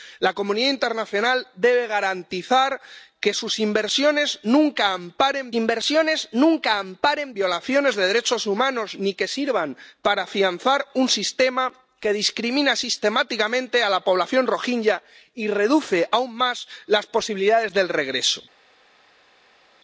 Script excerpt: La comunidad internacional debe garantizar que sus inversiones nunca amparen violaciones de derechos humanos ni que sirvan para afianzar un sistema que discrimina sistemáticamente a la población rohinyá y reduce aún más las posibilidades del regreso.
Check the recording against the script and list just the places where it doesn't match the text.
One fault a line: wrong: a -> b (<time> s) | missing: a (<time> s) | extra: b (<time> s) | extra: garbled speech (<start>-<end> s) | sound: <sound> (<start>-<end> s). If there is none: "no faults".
extra: inversiones nunca amparen (5.5 s)